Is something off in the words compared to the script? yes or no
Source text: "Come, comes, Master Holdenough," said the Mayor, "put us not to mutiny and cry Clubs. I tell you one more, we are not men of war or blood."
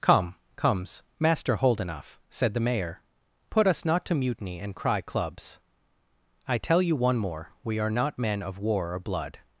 no